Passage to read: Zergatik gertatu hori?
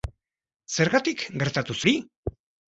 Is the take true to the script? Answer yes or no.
yes